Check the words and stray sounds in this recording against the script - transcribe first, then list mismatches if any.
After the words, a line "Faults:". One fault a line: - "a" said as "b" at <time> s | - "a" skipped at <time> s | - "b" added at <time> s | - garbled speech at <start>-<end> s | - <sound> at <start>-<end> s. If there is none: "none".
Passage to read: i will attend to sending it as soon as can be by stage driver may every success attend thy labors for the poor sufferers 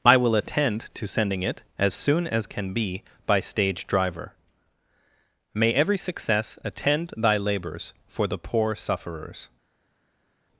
i will attend to sending it as soon as can be by stage driver may every success attend thy labors for the poor sufferers
Faults:
none